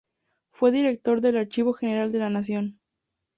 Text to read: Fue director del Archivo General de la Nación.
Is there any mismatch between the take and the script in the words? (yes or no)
no